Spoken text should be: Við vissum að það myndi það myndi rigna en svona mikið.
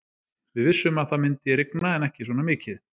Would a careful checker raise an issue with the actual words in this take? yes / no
yes